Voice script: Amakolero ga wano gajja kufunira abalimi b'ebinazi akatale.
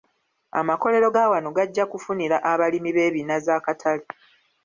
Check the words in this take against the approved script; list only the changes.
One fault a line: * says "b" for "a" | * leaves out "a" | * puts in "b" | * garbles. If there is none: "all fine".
all fine